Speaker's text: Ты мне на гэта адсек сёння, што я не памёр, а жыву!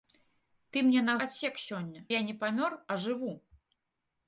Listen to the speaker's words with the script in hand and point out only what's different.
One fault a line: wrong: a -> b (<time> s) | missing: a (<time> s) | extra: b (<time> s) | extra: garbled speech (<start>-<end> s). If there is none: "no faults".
missing: гэта (1.1 s)
missing: што (2.1 s)